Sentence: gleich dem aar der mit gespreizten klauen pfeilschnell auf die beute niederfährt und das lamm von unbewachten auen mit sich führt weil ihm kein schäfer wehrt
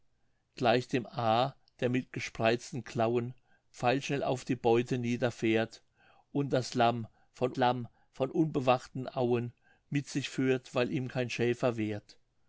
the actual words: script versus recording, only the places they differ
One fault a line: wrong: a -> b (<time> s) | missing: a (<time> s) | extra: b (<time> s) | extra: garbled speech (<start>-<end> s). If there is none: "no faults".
extra: lamm von (7.6 s)